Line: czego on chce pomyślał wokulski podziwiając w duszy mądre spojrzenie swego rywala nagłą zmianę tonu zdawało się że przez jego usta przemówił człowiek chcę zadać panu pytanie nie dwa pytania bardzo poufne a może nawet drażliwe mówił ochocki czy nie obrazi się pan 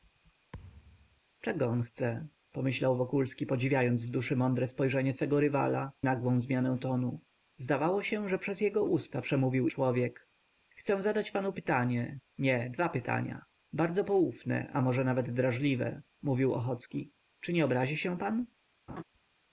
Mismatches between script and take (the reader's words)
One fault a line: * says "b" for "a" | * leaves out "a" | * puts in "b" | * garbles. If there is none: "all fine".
all fine